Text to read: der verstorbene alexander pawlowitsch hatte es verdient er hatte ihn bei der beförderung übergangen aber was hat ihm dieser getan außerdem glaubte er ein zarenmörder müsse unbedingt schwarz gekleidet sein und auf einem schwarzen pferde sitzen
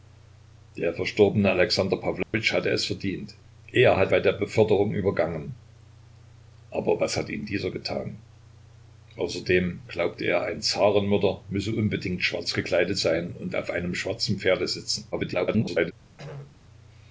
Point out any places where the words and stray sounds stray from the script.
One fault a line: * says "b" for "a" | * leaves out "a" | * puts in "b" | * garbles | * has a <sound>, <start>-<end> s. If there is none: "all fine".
* has a dropout, 2.2-2.3 s
* leaves out "ihn"
* garbles
* has a throat clearing, 16.2-16.6 s